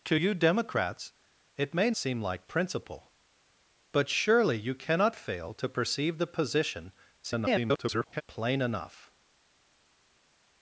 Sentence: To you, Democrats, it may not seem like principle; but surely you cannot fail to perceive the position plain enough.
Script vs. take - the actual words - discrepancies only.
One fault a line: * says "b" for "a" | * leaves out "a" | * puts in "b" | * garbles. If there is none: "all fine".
* leaves out "not"
* garbles